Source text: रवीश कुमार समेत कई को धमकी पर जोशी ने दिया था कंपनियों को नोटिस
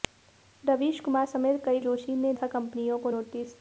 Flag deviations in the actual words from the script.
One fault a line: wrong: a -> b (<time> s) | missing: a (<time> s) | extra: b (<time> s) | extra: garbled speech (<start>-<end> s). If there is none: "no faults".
missing: को धमकी पर (1.8 s)
missing: दिया (2.3 s)